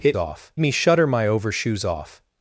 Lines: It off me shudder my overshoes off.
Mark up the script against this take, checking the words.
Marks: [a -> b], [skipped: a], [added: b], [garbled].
It off me shudder my overshoes off.